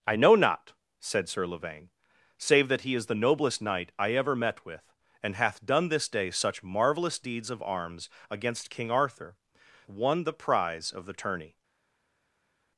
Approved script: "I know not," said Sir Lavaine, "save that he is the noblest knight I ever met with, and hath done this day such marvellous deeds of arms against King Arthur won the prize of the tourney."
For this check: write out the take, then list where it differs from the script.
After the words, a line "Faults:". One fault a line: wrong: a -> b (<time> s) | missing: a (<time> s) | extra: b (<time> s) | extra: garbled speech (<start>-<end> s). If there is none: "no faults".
"I know not," said Sir Lavaine, "save that he is the noblest knight I ever met with, and hath done this day such marvellous deeds of arms against King Arthur won the prize of the tourney."
Faults:
no faults